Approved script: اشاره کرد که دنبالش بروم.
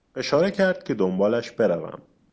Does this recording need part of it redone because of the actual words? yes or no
no